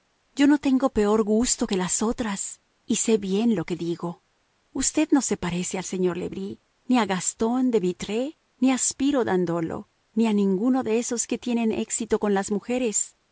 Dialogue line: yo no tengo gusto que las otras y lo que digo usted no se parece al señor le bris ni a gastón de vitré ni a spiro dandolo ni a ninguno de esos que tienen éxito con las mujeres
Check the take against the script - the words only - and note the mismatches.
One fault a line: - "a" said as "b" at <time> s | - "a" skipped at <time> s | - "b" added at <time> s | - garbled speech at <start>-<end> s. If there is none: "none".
- "peor" added at 0.9 s
- "sé bien" added at 3.0 s